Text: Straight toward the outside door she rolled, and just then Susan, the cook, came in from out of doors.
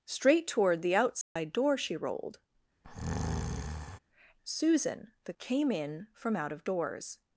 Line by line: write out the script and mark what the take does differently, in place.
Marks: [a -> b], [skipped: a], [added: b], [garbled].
Straight toward the outside door she rolled, [skipped: and just then] Susan, the [skipped: cook,] came in from out of doors.